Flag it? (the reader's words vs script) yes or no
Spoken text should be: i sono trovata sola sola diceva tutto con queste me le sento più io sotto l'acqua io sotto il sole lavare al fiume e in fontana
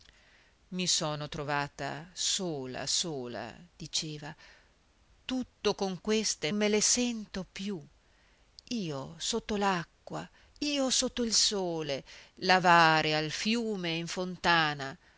no